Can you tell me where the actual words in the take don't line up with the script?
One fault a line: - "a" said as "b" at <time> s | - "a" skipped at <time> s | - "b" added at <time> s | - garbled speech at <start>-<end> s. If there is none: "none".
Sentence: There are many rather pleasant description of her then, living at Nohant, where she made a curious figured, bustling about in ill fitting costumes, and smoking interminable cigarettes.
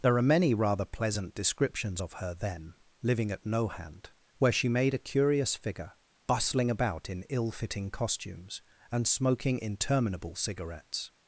- "description" said as "descriptions" at 1.4 s
- "figured" said as "figure" at 5.6 s